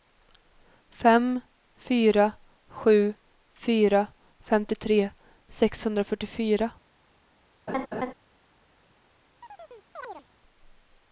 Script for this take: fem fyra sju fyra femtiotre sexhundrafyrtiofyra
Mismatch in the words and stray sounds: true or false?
true